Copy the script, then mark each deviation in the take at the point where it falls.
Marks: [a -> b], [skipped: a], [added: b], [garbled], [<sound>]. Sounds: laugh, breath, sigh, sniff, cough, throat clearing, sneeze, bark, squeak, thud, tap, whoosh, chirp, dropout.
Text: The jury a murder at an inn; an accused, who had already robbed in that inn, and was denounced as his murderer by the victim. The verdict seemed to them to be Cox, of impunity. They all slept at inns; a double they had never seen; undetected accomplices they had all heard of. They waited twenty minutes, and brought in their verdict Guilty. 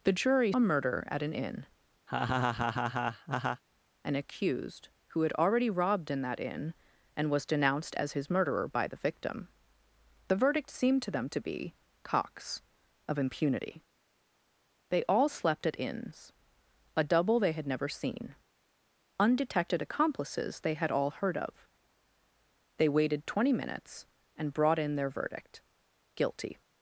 The jury a murder at an inn; [laugh] an accused, who had already robbed in that inn, and was denounced as his murderer by the victim. The verdict seemed to them to be Cox, of impunity. They all slept at inns; a double they had never seen; undetected accomplices they had all heard of. They waited twenty minutes, and brought in their verdict Guilty.